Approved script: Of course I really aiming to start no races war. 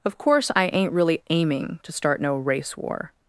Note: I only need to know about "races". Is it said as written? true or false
false